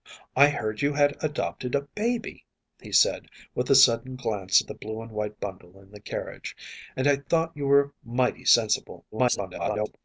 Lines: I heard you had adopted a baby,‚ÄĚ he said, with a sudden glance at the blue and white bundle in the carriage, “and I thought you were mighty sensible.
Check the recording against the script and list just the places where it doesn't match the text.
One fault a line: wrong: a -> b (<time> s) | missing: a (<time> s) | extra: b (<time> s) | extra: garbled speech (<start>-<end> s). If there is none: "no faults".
extra: garbled speech (9.1-10.0 s)